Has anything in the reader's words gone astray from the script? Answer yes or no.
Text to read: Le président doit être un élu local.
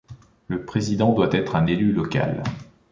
no